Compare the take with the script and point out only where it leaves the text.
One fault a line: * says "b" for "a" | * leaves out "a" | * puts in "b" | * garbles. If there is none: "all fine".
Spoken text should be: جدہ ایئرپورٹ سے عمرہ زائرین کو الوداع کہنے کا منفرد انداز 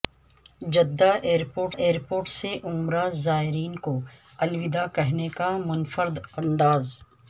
* puts in "ایئرپورٹ"